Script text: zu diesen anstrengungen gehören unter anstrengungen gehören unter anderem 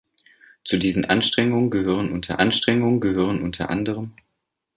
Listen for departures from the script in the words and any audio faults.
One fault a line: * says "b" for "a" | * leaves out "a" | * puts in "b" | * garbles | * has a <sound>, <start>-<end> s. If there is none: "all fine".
all fine